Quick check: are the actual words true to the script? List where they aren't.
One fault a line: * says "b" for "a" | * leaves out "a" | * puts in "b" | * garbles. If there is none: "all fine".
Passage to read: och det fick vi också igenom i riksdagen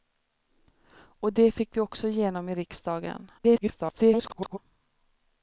* garbles